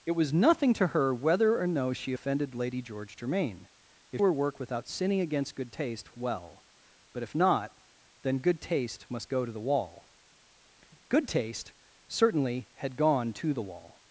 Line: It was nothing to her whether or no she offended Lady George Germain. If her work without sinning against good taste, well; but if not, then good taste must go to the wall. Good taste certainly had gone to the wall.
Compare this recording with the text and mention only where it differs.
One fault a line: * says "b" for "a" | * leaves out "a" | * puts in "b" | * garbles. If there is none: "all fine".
all fine